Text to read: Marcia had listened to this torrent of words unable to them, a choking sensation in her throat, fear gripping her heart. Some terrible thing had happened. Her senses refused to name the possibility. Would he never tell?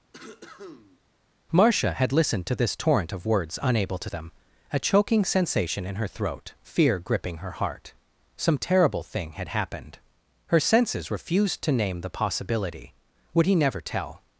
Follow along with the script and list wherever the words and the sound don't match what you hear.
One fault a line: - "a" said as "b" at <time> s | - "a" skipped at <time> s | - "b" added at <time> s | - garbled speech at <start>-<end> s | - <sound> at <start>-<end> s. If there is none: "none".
- cough at 0.1-1.0 s